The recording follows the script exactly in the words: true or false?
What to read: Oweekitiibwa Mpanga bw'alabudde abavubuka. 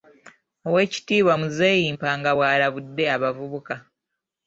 false